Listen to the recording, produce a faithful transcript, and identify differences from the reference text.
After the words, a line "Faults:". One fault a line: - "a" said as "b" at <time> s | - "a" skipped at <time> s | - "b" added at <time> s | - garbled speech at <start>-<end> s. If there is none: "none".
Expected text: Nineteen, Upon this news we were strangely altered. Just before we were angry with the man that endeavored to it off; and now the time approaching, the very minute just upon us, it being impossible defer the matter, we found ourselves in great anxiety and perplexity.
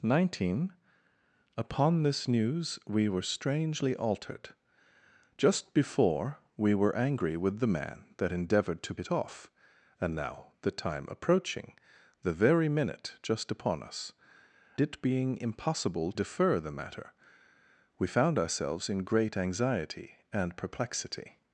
Nineteen, Upon this news we were strangely altered. Just before we were angry with the man that endeavored to it off; and now the time approaching, the very minute just upon us, it being impossible defer the matter, we found ourselves in great anxiety and perplexity.
Faults:
none